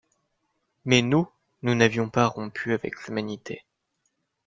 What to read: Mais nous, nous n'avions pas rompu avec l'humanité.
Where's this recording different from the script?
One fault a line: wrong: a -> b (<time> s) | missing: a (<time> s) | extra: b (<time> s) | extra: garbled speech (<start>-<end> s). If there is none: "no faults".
no faults